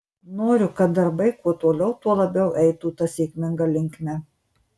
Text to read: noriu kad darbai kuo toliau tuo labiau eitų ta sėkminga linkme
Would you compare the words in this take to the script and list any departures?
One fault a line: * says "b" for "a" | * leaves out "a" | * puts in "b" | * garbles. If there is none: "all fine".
all fine